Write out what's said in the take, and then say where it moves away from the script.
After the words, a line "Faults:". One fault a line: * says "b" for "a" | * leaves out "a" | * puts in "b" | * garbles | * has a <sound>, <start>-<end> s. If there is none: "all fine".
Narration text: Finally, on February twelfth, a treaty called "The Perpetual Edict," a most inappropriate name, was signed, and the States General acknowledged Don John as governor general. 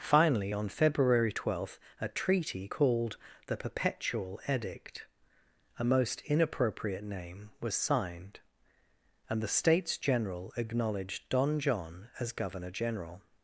Finally, on February twelfth, a treaty called "The Perpetual Edict," a most inappropriate name, was signed, and the States General acknowledged Don John as governor general.
Faults:
all fine